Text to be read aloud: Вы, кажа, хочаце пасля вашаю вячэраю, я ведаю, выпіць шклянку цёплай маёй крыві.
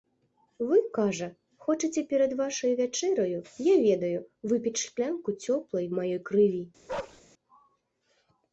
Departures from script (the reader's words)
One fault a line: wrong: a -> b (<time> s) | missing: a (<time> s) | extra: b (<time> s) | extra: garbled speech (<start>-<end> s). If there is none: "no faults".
wrong: пасля -> перад (2.1 s)